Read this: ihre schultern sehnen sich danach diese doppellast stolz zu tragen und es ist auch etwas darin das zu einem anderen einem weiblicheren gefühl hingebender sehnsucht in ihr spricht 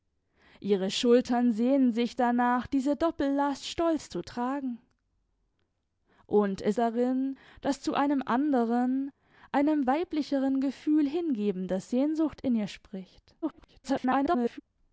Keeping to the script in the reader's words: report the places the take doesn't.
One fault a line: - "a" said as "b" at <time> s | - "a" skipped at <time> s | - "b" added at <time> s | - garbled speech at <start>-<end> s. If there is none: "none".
- "ist auch etwas" skipped at 6.8 s
- garbled speech at 13.4-14.6 s